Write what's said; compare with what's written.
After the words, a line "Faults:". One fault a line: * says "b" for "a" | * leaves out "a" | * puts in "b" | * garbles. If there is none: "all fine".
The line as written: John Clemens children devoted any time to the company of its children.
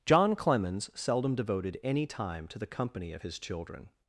John Clemens seldom devoted any time to the company of his children.
Faults:
* says "seldom" for "children"
* says "his" for "its"